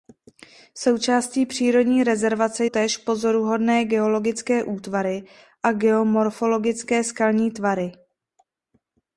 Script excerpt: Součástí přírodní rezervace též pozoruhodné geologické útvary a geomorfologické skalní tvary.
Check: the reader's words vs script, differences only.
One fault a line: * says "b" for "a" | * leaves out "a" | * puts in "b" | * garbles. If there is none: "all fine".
all fine